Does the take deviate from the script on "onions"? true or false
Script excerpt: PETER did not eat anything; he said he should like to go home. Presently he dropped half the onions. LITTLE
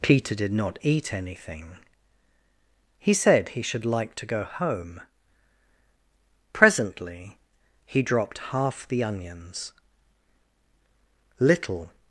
false